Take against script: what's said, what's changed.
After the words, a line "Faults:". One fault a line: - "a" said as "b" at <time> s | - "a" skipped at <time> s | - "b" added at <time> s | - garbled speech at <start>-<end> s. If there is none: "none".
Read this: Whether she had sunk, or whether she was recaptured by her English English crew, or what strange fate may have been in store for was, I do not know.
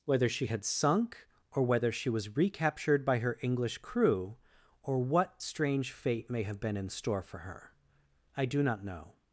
Whether she had sunk, or whether she was recaptured by her English crew, or what strange fate may have been in store for her, I do not know.
Faults:
- "English" skipped at 3.8 s
- "was" said as "her" at 7.4 s